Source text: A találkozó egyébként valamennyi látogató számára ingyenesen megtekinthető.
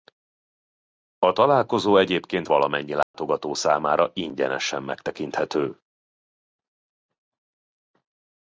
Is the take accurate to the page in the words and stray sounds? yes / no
no